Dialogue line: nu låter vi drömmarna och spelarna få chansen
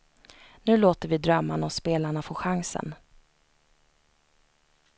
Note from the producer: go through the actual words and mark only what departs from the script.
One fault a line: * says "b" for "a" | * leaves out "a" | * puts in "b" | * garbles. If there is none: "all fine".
all fine